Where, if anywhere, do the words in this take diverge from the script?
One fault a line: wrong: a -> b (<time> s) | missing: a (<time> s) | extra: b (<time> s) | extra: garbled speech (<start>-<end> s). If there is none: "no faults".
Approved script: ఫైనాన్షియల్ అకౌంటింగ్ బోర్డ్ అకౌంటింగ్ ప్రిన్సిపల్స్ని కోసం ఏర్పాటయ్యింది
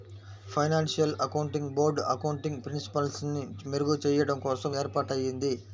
extra: మెరుగుచెయ్యడం (3.7 s)